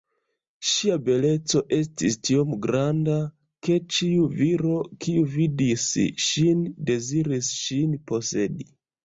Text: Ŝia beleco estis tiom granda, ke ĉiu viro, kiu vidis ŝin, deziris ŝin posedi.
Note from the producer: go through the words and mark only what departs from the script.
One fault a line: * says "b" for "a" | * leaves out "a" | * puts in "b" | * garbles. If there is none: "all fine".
all fine